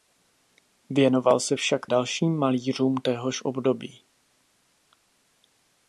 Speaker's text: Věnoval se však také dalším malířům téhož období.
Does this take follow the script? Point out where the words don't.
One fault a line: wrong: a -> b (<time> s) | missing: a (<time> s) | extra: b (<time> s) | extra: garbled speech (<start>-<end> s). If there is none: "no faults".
missing: také (1.9 s)